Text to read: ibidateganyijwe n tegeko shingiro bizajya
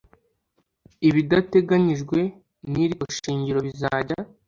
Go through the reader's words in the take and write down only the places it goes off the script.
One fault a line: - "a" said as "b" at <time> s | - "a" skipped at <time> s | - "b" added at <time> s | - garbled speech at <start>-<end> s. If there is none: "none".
- "iri" added at 2.8 s